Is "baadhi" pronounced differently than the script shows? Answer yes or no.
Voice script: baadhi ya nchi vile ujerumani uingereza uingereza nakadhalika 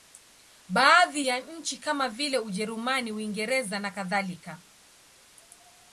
no